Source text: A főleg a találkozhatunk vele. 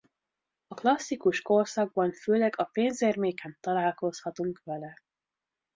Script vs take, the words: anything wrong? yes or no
yes